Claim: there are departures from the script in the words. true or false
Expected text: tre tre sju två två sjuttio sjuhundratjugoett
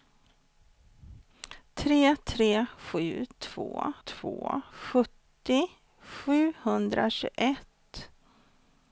false